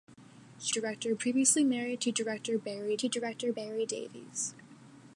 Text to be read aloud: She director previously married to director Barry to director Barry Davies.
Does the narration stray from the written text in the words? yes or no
no